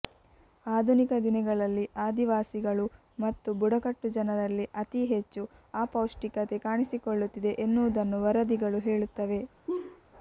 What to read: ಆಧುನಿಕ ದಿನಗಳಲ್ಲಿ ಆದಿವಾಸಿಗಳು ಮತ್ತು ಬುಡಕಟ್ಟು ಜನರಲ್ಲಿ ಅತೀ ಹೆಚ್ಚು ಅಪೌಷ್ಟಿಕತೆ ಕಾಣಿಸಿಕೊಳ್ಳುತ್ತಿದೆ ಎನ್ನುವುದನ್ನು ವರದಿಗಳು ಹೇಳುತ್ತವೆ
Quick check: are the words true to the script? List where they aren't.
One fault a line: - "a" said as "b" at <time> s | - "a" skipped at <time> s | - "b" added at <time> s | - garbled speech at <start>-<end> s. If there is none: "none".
none